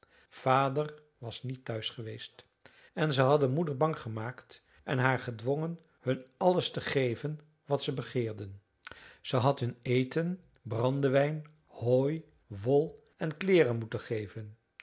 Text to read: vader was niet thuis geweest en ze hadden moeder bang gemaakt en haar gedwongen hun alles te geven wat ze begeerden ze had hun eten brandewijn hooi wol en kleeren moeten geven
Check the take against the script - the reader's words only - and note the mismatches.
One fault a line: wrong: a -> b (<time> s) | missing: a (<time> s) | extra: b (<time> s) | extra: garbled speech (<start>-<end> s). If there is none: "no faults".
no faults